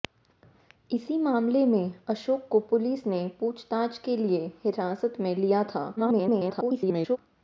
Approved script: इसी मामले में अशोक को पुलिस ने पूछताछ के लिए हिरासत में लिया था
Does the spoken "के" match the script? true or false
true